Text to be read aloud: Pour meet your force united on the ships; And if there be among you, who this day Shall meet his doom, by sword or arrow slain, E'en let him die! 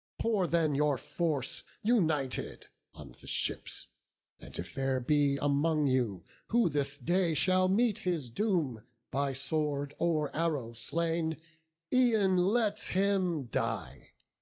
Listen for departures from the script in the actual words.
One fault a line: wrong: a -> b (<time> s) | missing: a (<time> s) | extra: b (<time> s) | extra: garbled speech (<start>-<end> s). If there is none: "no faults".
wrong: meet -> then (0.5 s)